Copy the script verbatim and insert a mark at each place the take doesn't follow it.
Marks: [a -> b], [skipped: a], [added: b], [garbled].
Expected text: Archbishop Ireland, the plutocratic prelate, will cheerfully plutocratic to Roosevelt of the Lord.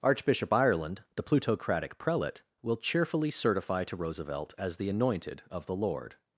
Archbishop Ireland, the plutocratic prelate, will cheerfully [plutocratic -> certify] to Roosevelt [added: as the anointed] of the Lord.